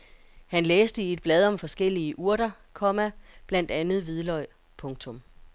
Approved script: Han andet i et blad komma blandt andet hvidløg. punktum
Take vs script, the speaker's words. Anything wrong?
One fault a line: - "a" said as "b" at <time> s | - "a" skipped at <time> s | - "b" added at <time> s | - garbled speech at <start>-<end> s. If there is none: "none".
- "andet" said as "læste" at 0.7 s
- "om forskellige urter" added at 1.4 s